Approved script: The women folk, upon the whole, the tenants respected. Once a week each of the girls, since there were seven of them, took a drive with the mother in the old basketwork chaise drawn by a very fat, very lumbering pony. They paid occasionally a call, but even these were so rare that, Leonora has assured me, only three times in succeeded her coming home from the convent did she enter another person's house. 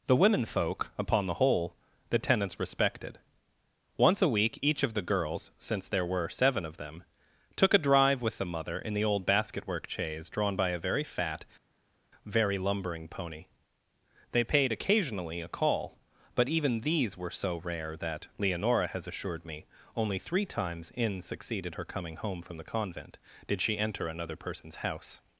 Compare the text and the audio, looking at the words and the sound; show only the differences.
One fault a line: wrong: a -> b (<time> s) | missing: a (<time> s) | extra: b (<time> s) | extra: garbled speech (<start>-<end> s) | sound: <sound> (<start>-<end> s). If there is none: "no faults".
no faults